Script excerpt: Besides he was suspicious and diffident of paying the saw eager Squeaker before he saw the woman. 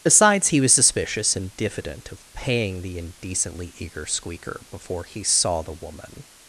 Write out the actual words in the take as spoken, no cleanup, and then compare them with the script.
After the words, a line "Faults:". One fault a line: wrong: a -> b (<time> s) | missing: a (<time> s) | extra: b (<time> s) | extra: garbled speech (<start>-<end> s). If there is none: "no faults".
Besides he was suspicious and diffident of paying the indecently eager Squeaker before he saw the woman.
Faults:
wrong: saw -> indecently (3.0 s)